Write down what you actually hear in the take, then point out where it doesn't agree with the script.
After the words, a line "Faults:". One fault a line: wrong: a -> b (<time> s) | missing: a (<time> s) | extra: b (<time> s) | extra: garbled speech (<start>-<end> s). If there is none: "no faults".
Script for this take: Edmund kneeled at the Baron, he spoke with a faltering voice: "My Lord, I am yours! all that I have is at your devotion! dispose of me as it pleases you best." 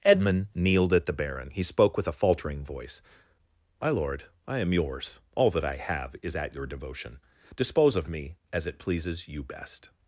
Edmund kneeled at the Baron, he spoke with a faltering voice: "My Lord, I am yours! all that I have is at your devotion! dispose of me as it pleases you best."
Faults:
no faults